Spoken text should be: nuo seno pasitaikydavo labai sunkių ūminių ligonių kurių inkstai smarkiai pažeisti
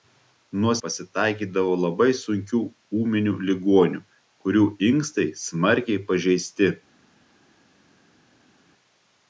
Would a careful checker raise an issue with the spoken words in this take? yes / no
yes